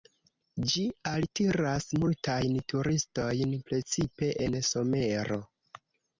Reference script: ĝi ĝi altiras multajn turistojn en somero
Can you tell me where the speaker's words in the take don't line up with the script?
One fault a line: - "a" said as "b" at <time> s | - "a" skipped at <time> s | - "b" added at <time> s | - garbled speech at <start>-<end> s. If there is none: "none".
- "ĝi" skipped at 0.8 s
- "precipe" added at 3.7 s